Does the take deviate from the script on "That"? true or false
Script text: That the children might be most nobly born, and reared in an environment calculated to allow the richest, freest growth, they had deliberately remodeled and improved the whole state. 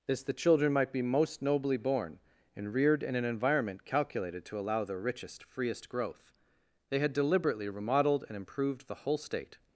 true